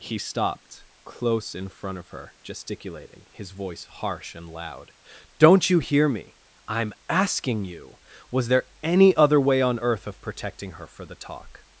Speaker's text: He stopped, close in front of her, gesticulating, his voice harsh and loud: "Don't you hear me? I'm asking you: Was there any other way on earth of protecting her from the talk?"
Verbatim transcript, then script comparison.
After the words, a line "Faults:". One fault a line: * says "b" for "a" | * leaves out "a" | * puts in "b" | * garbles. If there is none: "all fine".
He stopped, close in front of her, gesticulating, his voice harsh and loud: "Don't you hear me? I'm asking you: Was there any other way on earth of protecting her for the talk?"
Faults:
* says "for" for "from"